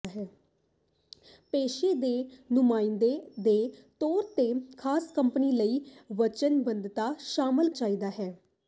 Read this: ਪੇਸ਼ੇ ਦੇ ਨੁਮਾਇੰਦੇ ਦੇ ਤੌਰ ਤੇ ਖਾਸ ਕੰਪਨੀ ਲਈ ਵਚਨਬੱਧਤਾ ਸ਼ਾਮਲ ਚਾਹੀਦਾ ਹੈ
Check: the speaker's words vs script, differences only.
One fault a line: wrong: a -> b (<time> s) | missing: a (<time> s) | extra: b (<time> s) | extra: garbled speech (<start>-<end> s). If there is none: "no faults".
no faults